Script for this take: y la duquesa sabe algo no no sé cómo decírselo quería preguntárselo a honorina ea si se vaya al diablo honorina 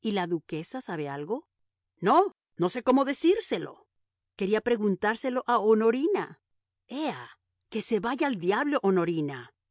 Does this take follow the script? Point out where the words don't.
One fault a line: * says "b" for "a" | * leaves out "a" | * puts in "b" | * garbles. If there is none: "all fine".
* says "que" for "si"